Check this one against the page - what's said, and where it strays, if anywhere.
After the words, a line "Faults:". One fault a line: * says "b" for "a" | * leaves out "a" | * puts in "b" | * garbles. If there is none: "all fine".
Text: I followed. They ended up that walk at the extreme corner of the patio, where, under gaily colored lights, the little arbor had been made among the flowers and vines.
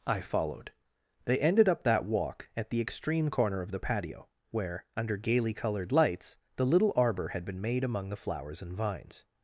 I followed. They ended up that walk at the extreme corner of the patio, where, under gaily colored lights, the little arbor had been made among the flowers and vines.
Faults:
all fine